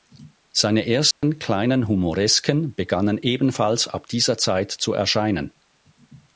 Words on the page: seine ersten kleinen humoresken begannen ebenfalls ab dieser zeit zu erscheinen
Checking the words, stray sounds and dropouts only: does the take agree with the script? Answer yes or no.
no